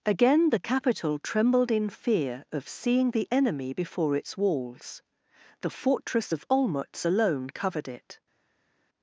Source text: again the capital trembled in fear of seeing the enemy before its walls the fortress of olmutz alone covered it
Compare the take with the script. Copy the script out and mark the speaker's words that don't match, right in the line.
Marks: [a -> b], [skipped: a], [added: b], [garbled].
again the capital trembled in fear of seeing the enemy before its walls the fortress of olmutz alone covered it